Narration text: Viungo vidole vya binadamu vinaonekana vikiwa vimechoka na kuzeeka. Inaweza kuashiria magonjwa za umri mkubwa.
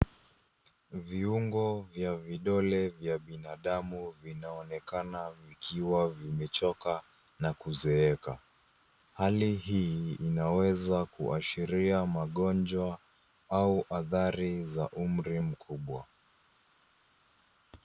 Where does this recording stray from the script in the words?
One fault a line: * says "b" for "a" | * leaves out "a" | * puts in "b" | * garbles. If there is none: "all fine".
* puts in "vya"
* puts in "Hali hii"
* puts in "au athari"